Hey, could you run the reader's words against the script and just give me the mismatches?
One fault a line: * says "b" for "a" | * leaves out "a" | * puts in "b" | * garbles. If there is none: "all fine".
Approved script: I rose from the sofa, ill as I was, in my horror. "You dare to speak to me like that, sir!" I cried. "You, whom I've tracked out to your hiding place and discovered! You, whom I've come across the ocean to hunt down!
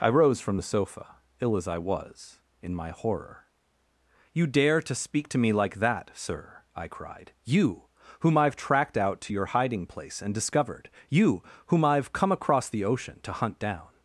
all fine